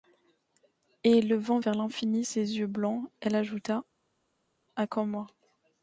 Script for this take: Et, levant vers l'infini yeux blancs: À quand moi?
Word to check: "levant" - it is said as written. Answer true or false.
true